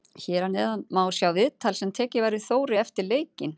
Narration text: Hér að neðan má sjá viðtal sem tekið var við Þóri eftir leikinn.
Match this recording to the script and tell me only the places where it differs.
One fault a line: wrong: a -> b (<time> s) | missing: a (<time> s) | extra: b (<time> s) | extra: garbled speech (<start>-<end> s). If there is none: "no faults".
no faults